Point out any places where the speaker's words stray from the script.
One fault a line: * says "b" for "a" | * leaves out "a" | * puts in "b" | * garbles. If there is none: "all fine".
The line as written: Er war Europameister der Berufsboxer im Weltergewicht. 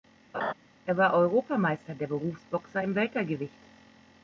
all fine